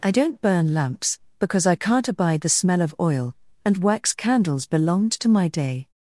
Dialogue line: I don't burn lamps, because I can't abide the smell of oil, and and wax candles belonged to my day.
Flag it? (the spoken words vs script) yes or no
yes